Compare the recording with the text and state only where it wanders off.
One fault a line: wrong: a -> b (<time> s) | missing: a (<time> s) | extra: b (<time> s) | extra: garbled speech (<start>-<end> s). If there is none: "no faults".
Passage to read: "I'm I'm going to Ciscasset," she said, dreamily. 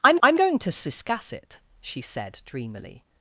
no faults